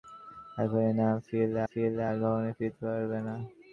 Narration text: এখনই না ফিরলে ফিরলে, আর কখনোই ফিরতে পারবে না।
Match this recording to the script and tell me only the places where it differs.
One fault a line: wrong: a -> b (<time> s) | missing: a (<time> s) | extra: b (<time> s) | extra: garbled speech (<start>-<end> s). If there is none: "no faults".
no faults